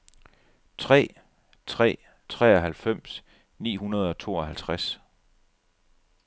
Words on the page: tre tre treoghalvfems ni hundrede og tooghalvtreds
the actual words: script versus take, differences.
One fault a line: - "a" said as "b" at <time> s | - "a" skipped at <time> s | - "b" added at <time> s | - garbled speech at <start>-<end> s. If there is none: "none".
none